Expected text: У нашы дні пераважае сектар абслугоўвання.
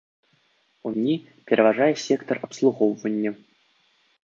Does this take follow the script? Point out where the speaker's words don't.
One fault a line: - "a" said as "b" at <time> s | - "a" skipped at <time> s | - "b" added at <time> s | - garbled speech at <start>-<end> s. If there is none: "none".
- "нашы" skipped at 0.9 s